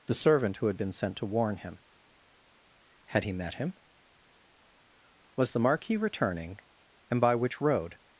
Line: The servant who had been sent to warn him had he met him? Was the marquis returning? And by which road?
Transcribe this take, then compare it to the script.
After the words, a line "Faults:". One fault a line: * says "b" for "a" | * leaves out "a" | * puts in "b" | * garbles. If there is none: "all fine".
The servant who had been sent to warn him had he met him? Was the marquis returning? And by which road?
Faults:
all fine